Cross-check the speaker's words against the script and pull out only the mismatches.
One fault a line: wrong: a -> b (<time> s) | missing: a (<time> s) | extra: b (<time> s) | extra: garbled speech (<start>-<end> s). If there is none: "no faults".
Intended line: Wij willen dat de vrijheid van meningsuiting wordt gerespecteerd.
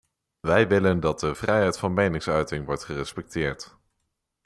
no faults